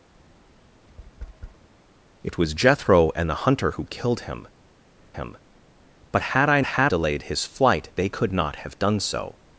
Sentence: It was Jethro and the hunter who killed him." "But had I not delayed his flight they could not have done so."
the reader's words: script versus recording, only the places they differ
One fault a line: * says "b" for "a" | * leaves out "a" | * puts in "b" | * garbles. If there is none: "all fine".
* puts in "him"
* says "had" for "not"